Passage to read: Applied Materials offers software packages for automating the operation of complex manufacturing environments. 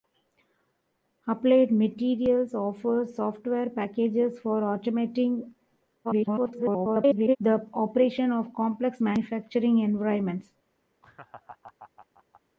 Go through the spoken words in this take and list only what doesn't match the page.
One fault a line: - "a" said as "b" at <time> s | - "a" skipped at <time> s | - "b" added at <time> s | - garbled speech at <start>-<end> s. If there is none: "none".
- garbled speech at 6.0-7.4 s